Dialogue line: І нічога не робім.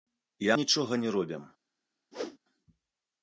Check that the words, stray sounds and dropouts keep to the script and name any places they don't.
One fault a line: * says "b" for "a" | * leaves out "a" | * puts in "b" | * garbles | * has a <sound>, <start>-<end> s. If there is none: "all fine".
* has a whoosh, 2.1-2.4 s